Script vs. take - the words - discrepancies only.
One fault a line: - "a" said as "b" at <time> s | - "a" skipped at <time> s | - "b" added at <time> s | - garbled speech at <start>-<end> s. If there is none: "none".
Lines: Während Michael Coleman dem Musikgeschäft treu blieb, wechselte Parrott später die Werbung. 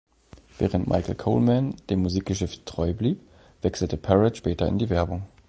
- "in" added at 4.7 s